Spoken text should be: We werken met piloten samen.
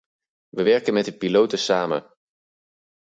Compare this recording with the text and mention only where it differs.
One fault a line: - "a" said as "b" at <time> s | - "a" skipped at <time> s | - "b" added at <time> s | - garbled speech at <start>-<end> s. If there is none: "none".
- "de" added at 1.0 s